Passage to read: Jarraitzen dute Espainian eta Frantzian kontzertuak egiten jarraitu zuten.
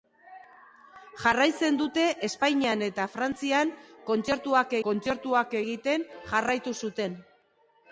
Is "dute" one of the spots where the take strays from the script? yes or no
no